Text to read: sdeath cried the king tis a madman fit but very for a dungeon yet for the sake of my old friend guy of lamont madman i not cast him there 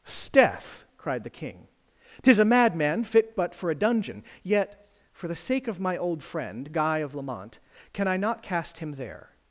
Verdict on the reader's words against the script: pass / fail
fail